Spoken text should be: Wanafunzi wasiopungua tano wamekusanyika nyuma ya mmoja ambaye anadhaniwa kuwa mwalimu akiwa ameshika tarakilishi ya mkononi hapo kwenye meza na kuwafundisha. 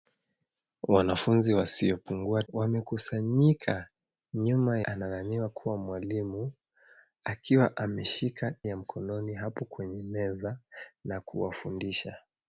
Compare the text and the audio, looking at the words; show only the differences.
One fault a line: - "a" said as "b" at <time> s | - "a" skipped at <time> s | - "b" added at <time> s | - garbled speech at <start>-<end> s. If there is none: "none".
- "tano" skipped at 2.4 s
- "ya mmoja ambaye" skipped at 4.8 s
- "tarakilishi" skipped at 8.5 s